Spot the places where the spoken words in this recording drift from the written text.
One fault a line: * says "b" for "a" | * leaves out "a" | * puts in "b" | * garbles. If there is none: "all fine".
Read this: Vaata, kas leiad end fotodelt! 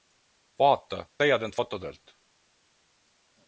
* leaves out "kas"